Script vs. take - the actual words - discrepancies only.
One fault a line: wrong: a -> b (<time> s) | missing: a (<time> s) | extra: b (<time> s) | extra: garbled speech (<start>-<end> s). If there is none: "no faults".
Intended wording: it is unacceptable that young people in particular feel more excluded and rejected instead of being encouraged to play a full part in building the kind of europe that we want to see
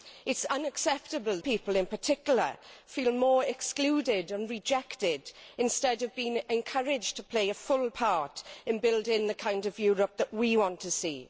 missing: that young (1.4 s)